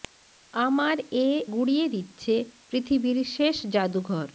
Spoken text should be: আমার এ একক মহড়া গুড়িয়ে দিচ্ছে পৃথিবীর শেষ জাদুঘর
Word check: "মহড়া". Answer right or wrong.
wrong